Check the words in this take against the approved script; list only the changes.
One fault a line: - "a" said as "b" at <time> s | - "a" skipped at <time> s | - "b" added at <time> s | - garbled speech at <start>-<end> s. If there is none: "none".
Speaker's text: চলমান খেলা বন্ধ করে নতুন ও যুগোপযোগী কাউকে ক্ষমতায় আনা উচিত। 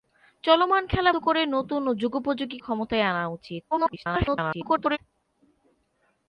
- "বন্ধ" skipped at 1.1 s
- "কাউকে" skipped at 2.6 s
- garbled speech at 3.7-5.0 s